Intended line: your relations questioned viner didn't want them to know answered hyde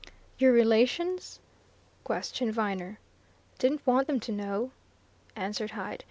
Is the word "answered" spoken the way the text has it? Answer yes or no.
yes